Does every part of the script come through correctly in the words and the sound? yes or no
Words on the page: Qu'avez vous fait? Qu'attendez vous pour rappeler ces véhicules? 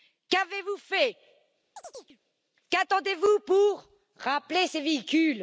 no